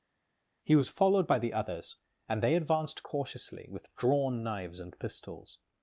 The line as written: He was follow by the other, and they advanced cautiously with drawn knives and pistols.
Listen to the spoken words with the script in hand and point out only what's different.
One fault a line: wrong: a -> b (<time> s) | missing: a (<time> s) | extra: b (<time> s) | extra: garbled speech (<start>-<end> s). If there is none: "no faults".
wrong: follow -> followed (0.9 s)
wrong: other -> others (1.5 s)